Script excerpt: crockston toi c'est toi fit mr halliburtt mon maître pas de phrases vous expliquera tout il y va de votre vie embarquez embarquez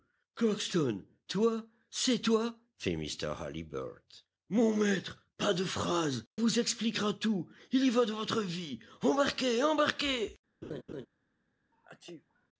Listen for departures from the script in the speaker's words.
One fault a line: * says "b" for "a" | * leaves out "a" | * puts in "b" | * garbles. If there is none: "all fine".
all fine